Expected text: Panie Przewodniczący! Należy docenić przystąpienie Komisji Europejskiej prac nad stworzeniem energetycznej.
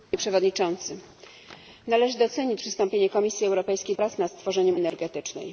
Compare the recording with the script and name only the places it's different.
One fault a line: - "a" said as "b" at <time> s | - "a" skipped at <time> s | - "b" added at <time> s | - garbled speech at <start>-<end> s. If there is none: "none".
none